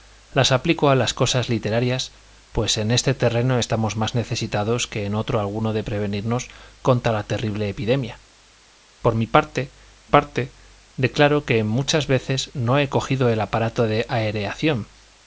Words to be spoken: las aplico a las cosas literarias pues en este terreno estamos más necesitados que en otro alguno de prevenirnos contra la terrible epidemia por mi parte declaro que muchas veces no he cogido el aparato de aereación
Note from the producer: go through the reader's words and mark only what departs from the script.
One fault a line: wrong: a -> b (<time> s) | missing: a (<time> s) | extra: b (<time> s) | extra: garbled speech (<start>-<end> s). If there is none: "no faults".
extra: parte (10.0 s)